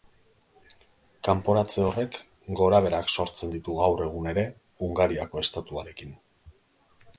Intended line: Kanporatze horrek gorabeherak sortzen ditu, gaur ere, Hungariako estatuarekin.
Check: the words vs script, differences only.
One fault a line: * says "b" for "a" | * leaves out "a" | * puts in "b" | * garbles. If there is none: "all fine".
* puts in "egun"